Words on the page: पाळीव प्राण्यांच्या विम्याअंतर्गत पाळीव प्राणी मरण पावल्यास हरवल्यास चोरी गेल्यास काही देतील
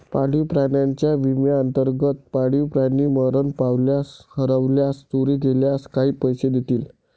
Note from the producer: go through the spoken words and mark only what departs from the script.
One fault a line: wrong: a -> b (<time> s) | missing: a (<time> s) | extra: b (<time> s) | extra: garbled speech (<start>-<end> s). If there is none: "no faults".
extra: पैसे (6.2 s)